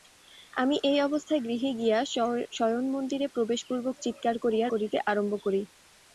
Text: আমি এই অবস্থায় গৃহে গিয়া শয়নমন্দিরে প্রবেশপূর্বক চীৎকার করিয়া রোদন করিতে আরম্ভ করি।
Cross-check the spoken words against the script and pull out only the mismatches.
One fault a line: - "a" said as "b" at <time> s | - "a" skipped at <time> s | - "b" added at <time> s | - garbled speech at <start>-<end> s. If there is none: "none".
- "রোদন" skipped at 4.7 s